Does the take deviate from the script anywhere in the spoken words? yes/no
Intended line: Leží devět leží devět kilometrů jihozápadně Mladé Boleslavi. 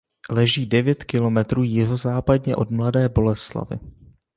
yes